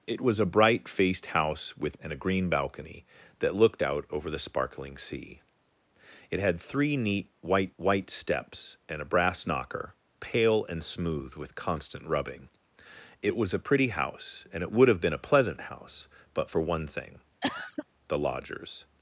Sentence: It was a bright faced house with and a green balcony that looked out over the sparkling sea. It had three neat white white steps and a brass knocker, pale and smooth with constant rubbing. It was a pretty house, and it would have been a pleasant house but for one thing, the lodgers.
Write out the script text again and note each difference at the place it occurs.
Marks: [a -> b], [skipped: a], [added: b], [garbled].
It was a bright faced house with and a green balcony that looked out over the sparkling sea. It had three neat white white steps and a brass knocker, pale and smooth with constant rubbing. It was a pretty house, and it would have been a pleasant house but for one thing, the lodgers.